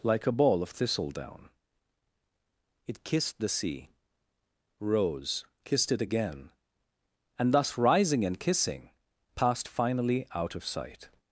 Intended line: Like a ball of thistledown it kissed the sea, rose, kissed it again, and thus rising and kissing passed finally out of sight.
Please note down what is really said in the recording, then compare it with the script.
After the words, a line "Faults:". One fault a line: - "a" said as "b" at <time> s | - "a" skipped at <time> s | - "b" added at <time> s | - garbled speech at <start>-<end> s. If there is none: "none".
Like a ball of thistledown it kissed the sea, rose, kissed it again, and thus rising and kissing passed finally out of sight.
Faults:
none